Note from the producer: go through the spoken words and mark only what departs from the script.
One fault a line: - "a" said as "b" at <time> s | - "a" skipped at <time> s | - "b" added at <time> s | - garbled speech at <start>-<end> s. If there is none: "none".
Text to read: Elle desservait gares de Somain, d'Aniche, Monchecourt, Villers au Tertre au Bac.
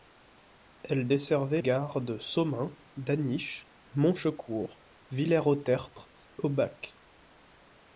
none